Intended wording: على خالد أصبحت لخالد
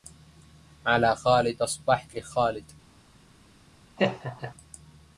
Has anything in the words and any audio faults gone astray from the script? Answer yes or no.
yes